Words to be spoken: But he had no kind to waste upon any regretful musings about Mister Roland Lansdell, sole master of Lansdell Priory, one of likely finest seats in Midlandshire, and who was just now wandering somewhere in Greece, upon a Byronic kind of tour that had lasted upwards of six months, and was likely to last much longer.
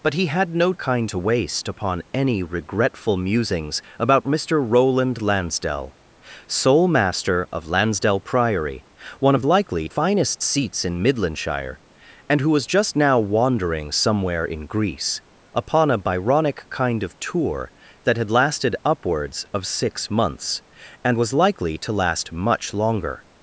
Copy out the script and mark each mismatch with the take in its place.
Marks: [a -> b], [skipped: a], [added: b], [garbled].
But he had no kind to waste upon any regretful musings about Mister Roland Lansdell, sole master of Lansdell Priory, one of likely finest seats in Midlandshire, and who was just now wandering somewhere in Greece, upon a Byronic kind of tour that had lasted upwards of six months, and was likely to last much longer.